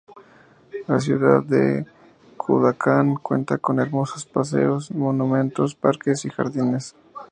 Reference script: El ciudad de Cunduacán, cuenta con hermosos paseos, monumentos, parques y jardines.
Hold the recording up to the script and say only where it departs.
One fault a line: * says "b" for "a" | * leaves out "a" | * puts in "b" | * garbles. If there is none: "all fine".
* says "La" for "El"